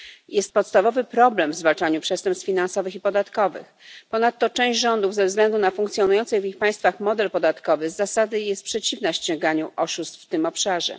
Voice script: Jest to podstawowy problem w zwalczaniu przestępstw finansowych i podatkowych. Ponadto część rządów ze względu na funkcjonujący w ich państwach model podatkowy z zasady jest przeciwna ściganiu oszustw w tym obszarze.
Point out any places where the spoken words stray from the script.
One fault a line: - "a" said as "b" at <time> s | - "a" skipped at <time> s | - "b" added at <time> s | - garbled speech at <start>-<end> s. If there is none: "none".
- "to" skipped at 0.5 s